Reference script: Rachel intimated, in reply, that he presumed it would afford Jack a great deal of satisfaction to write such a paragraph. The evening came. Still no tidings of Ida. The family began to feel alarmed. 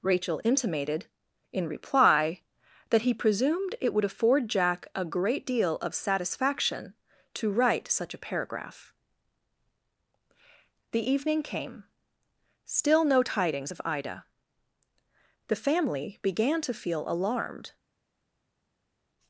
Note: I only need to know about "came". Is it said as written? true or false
true